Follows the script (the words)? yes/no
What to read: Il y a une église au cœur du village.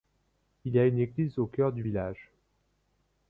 yes